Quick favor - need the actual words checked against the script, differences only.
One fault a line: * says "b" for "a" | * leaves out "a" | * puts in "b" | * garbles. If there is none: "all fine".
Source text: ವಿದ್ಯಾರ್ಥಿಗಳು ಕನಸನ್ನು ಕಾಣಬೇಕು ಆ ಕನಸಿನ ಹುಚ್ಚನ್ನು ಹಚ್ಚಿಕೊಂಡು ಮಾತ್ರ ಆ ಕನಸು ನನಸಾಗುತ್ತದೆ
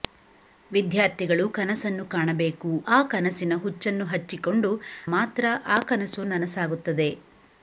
all fine